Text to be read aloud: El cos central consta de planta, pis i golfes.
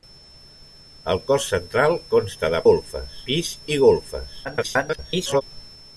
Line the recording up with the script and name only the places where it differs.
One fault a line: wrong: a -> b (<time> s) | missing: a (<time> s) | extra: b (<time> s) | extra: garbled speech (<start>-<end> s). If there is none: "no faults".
wrong: planta -> golfes (2.7 s)
extra: garbled speech (4.4-5.4 s)